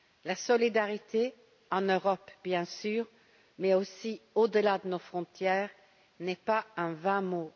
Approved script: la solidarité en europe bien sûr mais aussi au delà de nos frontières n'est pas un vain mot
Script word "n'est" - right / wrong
right